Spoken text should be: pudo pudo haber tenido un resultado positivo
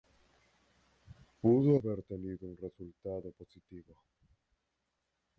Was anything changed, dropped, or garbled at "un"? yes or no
no